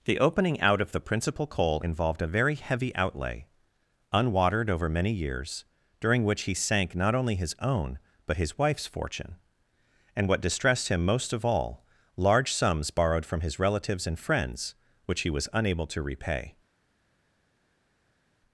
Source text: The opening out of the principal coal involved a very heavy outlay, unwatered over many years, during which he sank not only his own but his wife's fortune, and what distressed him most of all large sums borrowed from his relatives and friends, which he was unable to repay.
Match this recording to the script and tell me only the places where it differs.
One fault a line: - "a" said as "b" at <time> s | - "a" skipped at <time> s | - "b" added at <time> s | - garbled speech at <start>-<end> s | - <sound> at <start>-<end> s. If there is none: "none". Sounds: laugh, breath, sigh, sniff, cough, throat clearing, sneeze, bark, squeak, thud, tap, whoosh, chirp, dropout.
none